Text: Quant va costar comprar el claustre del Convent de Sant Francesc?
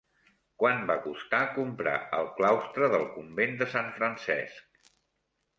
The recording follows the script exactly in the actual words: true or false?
true